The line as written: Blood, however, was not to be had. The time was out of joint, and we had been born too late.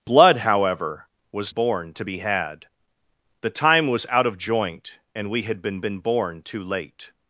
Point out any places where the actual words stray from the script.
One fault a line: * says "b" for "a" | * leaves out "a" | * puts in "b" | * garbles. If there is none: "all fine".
* says "born" for "not"
* puts in "been"